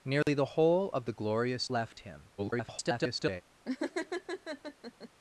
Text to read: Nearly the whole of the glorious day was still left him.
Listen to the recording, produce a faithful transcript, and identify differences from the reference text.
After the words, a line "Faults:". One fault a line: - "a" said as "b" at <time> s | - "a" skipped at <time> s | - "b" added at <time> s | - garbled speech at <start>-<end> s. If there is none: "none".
Nearly the whole of the glorious left him. [garbled]
Faults:
- "day was still" skipped at 1.7 s
- garbled speech at 2.4-3.4 s